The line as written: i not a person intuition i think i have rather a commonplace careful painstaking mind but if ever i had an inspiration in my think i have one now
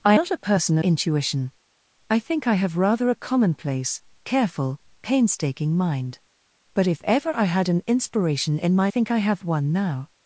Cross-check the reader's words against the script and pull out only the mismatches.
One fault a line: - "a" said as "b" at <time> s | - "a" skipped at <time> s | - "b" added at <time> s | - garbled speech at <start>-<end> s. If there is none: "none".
none